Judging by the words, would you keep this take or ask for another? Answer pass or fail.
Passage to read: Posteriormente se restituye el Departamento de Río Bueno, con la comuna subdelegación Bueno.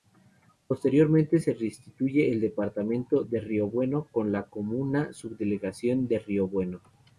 fail